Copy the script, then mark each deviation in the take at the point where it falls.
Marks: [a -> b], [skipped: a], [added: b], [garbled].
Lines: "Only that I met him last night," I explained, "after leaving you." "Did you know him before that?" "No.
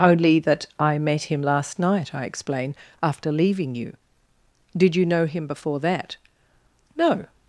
"Only that I met him last night," I [explained, -> explain] "after leaving you." "Did you know him before that?" "No.